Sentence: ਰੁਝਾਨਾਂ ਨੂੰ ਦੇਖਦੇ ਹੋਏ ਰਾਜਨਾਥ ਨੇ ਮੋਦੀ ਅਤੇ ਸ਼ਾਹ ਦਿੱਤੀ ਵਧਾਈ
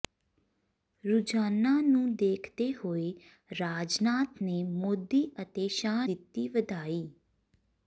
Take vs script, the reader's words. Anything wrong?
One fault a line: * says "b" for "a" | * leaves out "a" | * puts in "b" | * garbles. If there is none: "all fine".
all fine